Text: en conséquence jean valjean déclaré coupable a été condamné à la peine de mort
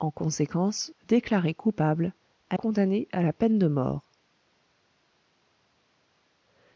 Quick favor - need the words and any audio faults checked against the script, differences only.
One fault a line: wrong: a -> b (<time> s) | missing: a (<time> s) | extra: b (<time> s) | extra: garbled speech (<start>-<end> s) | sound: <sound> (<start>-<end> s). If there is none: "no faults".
missing: jean valjean (0.9 s)
missing: été (2.6 s)